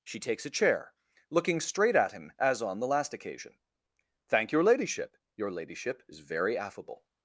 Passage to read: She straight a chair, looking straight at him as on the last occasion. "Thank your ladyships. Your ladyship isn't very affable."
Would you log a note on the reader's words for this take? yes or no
yes